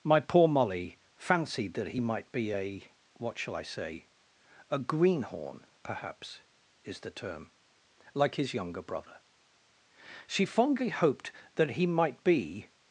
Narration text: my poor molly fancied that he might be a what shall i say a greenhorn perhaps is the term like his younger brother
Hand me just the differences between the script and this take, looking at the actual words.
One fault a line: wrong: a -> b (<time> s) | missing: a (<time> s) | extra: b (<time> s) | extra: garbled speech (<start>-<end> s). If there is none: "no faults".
extra: she fondly hoped that he might be (10.3 s)